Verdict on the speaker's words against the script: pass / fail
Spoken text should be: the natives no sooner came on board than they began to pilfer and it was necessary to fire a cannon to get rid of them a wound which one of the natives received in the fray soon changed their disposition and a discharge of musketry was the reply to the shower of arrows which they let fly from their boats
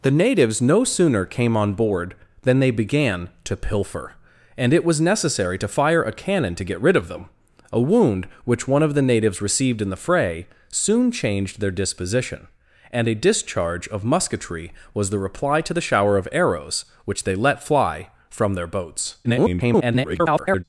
fail